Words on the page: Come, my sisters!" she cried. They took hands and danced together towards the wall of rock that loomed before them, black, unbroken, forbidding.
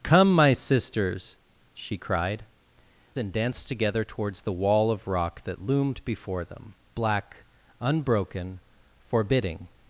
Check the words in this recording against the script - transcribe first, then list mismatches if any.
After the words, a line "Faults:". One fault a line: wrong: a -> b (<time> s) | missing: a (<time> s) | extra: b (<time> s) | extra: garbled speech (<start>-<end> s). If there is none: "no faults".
Come, my sisters!" she cried. And danced together towards the wall of rock that loomed before them, black, unbroken, forbidding.
Faults:
missing: They took hands (2.5 s)